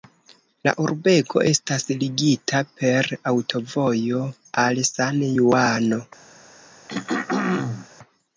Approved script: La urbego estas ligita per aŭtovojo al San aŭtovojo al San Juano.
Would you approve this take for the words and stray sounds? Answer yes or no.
no